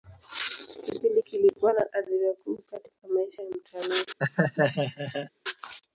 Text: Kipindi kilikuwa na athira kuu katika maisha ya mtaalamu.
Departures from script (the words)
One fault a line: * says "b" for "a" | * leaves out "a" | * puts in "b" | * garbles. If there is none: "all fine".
all fine